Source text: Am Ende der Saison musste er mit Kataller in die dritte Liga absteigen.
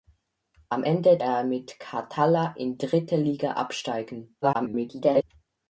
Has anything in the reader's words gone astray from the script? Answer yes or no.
yes